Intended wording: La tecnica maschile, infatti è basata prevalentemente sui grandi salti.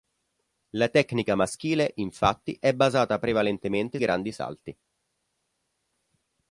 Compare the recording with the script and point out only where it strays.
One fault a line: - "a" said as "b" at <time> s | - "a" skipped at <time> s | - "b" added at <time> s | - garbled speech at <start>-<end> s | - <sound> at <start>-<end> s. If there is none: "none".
- "sui" skipped at 4.0 s